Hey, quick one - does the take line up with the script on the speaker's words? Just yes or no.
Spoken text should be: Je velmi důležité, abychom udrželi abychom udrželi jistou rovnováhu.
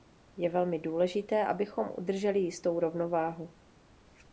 no